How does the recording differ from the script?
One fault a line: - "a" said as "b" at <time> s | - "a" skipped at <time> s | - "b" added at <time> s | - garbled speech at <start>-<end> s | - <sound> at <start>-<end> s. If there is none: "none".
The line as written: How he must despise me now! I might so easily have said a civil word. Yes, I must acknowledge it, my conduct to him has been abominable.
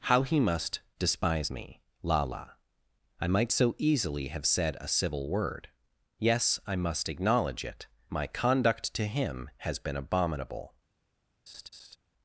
- "now" said as "lala" at 2.0 s
- laugh at 11.5-12.0 s